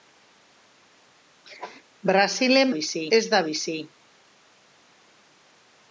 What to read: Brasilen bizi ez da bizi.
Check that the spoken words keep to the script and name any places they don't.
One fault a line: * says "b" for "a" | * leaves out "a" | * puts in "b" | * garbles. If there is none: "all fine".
all fine